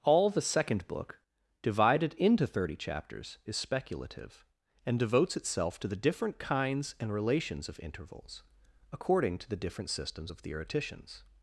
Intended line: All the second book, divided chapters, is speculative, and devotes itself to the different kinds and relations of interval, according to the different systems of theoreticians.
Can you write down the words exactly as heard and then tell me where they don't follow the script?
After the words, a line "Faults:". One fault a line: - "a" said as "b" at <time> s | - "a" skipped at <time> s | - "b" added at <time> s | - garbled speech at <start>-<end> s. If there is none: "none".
All the second book, divided into thirty chapters, is speculative, and devotes itself to the different kinds and relations of intervals, according to the different systems of theoreticians.
Faults:
- "into thirty" added at 2.1 s
- "interval" said as "intervals" at 7.8 s